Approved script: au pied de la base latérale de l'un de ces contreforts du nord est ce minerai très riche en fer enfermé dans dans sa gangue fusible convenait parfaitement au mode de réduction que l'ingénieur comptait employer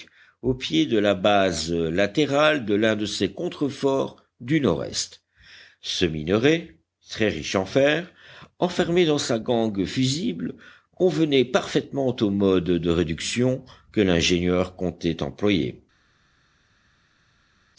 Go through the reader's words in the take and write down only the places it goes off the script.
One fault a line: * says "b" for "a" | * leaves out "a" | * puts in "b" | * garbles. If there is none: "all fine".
* leaves out "dans"